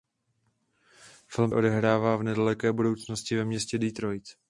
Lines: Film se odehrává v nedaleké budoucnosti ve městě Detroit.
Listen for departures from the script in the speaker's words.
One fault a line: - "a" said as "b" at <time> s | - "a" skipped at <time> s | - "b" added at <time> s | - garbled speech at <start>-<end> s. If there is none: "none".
- "se" skipped at 1.5 s